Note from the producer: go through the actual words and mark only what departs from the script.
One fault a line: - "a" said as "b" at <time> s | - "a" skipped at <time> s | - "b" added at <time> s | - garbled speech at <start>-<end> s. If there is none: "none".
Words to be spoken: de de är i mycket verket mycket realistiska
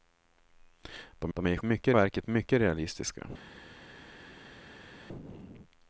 none